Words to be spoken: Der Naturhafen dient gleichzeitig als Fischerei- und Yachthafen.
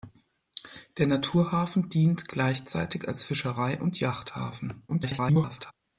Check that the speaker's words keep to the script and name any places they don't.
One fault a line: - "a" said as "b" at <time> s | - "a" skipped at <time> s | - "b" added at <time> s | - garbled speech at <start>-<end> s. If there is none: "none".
- garbled speech at 4.9-5.7 s